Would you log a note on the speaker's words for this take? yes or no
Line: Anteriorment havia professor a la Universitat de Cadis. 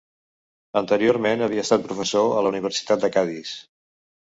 yes